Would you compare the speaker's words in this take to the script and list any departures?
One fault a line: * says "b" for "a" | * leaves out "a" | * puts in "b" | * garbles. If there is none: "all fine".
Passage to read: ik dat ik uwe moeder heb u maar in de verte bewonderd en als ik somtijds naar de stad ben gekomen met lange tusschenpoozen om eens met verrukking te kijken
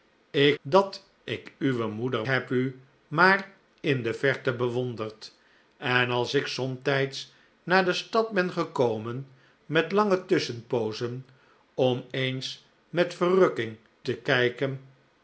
all fine